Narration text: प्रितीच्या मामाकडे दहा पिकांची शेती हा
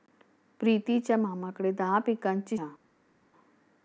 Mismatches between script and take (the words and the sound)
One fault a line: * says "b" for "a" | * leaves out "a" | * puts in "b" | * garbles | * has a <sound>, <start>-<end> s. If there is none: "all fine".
* leaves out "शेती"